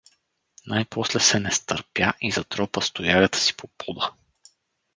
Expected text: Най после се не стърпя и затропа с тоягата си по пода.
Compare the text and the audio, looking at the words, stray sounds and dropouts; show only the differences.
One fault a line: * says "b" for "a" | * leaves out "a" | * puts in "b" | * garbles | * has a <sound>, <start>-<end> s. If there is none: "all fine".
all fine